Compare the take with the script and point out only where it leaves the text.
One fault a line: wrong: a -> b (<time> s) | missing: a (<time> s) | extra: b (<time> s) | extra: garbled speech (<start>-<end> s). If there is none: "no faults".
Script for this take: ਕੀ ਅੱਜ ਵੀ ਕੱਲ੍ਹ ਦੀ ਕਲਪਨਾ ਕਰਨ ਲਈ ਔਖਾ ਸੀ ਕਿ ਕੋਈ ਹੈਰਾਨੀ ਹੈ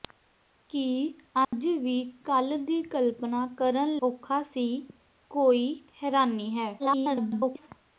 missing: ਲਈ (4.0 s)
missing: ਕਿ (4.7 s)
extra: garbled speech (6.8-7.7 s)